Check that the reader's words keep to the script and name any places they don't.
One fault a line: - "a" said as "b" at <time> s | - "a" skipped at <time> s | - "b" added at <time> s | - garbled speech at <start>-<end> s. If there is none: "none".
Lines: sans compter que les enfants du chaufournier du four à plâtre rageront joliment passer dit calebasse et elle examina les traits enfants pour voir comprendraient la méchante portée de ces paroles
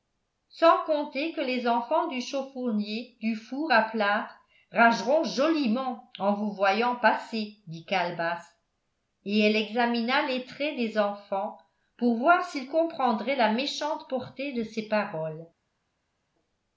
- "en vous voyant" added at 6.2 s
- "des" added at 10.8 s
- "s'ils" added at 12.4 s